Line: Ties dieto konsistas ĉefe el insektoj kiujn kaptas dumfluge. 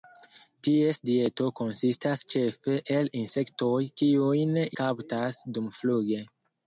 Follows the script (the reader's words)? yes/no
yes